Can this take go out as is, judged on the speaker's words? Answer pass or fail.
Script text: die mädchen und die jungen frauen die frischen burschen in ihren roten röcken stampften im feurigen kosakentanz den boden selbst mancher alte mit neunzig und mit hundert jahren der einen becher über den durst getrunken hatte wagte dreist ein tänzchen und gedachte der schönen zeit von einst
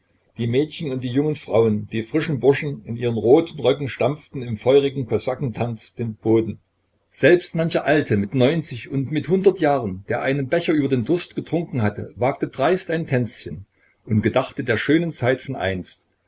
pass